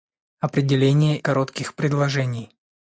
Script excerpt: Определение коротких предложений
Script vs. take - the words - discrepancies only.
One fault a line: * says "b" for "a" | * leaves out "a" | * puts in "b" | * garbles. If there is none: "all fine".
all fine